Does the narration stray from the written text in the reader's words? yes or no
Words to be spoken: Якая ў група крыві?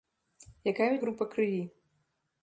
no